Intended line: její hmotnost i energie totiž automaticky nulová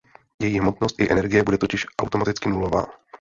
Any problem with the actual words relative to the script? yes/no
yes